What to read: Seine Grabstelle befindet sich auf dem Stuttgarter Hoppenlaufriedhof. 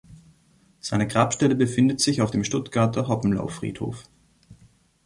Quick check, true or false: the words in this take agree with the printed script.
true